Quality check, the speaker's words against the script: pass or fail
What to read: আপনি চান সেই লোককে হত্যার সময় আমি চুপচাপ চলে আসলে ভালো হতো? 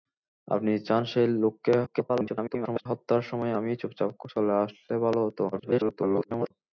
fail